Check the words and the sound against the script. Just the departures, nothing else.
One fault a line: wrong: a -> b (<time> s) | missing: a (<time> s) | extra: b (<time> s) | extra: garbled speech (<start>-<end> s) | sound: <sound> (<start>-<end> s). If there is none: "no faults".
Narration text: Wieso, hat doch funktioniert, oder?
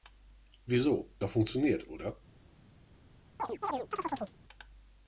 missing: hat (1.1 s)
sound: chirp (3.4-4.4 s)